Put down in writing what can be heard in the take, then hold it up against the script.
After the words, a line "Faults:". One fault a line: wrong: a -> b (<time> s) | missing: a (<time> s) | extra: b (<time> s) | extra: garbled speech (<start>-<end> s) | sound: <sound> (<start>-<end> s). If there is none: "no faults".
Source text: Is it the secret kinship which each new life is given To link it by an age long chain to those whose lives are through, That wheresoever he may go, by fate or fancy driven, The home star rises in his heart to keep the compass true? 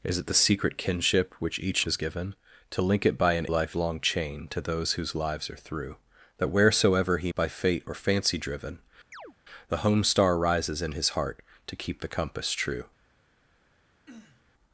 Is it the secret kinship which each is given To link it by an life long chain to those whose lives are through, That wheresoever he by fate or fancy driven, The home star rises in his heart to keep the compass true?
Faults:
missing: new life (1.9 s)
wrong: age -> life (3.5 s)
missing: may go (7.3 s)
sound: chirp (9.1-9.4 s)
sound: throat clearing (14.1-14.4 s)